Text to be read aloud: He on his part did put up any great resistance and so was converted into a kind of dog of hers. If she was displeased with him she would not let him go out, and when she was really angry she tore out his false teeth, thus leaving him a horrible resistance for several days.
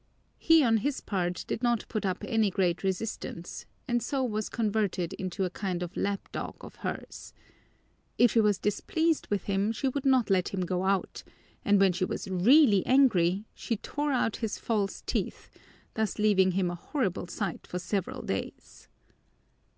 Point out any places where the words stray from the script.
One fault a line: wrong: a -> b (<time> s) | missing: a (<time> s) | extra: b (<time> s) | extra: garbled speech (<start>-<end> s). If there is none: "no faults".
extra: not (1.6 s)
extra: lap (5.9 s)
wrong: resistance -> sight (17.3 s)